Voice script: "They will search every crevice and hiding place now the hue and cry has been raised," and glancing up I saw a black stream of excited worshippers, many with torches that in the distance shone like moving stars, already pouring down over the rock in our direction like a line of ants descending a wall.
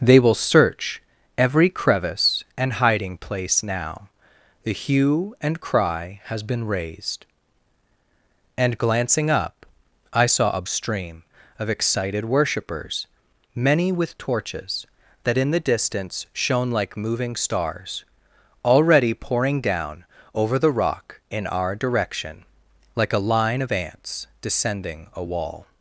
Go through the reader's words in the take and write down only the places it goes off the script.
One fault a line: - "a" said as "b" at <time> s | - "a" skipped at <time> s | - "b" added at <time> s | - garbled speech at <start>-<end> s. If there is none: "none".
- "black" skipped at 10.7 s